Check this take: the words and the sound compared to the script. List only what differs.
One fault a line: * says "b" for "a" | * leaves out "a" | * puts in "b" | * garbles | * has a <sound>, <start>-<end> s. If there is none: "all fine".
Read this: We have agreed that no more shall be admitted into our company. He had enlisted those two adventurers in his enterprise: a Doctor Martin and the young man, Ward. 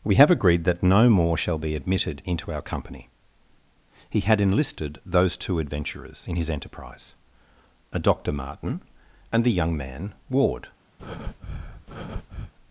* has a breath, 11.0-12.5 s